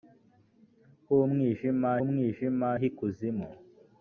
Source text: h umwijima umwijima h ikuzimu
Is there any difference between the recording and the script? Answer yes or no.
no